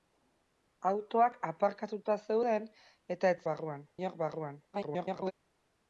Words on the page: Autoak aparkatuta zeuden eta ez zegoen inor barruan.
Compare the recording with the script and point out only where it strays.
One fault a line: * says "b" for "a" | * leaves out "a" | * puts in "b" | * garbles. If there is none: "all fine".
* says "barruan" for "zegoen"
* garbles